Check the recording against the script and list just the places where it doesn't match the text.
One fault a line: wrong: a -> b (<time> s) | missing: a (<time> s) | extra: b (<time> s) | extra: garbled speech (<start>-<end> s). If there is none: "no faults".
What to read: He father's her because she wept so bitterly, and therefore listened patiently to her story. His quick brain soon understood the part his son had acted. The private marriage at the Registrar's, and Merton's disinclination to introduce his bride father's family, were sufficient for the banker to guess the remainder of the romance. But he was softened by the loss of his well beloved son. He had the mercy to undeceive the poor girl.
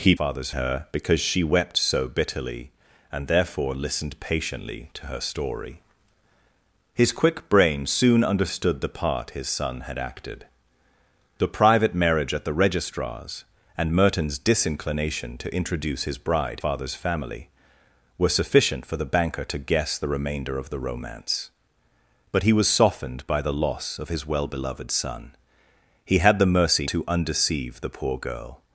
no faults